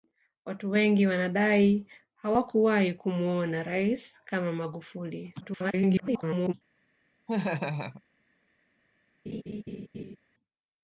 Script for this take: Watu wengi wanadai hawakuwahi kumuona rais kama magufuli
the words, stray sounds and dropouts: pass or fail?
fail